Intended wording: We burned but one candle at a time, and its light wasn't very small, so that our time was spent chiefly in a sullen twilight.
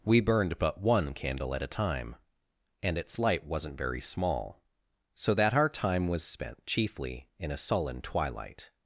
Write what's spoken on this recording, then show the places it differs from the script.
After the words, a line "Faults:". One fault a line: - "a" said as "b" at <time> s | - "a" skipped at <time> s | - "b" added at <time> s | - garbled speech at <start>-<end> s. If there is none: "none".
We burned but one candle at a time, and its light wasn't very small, so that our time was spent chiefly in a sullen twilight.
Faults:
none